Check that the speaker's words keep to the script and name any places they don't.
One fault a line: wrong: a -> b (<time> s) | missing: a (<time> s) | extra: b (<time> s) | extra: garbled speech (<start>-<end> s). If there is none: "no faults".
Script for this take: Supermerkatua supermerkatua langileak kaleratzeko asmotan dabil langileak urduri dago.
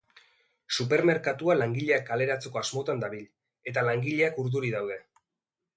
missing: supermerkatua (1.6 s)
extra: eta (3.7 s)
wrong: dago -> daude (4.8 s)